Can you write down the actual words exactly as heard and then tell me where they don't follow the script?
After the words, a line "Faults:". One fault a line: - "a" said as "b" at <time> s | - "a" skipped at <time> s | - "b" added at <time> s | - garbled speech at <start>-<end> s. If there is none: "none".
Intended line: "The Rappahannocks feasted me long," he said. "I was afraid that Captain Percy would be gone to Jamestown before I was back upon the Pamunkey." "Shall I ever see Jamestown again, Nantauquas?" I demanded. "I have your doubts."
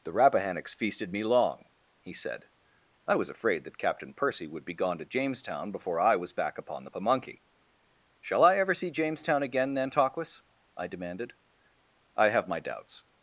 "The Rappahannocks feasted me long," he said. "I was afraid that Captain Percy would be gone to Jamestown before I was back upon the Pamunkey." "Shall I ever see Jamestown again, Nantauquas?" I demanded. "I have my doubts."
Faults:
- "your" said as "my" at 12.5 s